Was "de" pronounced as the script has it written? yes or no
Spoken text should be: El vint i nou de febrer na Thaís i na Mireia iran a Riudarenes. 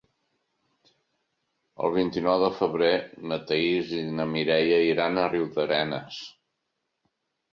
yes